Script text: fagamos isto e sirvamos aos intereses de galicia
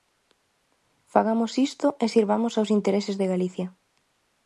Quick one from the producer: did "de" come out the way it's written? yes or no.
yes